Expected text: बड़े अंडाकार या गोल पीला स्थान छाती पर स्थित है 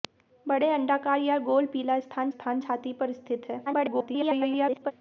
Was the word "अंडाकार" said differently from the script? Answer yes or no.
no